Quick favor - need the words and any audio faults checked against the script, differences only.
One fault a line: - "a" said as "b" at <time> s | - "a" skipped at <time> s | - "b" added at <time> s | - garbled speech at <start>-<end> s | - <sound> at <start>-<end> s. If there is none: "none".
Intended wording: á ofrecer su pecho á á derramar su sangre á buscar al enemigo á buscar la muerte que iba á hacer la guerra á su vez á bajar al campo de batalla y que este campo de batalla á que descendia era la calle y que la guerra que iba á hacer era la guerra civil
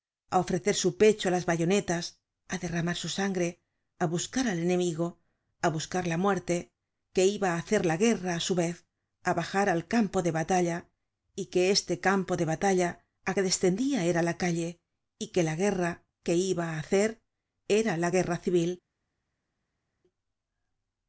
- "las bayonetas" added at 1.4 s